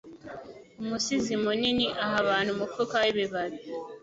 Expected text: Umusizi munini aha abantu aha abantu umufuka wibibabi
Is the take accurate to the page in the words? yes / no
no